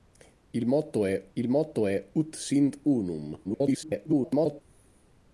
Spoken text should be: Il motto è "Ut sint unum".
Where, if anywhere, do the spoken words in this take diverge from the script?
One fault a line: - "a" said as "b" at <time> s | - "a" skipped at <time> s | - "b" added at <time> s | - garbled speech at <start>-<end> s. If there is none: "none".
- "il motto è" added at 1.4 s
- garbled speech at 3.4-4.6 s